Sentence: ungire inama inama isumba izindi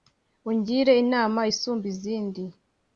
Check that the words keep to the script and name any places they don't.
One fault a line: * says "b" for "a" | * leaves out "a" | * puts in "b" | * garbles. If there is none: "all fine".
* leaves out "inama"